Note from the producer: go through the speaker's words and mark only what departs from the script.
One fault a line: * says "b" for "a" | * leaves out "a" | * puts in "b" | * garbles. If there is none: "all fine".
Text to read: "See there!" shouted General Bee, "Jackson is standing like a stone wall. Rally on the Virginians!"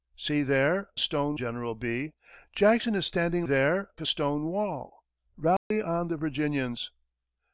* says "stone" for "shouted"
* says "there" for "like"